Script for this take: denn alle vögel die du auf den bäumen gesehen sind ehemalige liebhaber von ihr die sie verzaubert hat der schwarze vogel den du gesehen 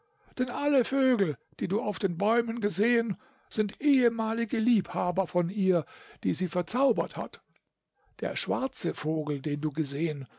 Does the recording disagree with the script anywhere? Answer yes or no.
no